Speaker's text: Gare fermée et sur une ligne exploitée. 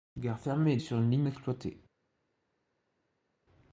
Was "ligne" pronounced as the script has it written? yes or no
yes